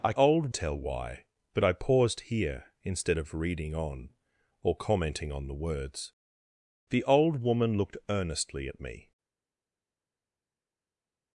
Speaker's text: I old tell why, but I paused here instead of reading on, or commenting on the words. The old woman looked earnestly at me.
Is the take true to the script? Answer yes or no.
yes